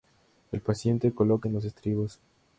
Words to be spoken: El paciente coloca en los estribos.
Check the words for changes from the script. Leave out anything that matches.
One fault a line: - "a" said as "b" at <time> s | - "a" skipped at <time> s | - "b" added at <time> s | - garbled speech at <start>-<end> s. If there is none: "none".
none